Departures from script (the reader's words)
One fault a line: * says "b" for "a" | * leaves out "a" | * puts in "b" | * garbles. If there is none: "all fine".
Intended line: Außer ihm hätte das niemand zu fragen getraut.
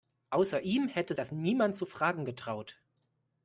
all fine